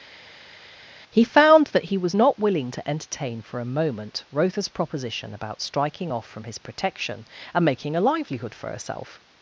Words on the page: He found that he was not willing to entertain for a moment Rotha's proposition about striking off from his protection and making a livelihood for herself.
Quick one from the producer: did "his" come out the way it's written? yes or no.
yes